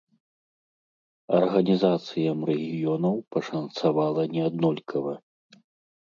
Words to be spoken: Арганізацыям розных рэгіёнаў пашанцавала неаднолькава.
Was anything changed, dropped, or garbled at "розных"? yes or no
yes